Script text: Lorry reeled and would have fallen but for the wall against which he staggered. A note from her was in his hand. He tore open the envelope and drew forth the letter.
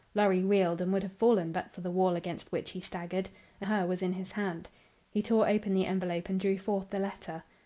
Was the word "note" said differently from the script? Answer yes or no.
yes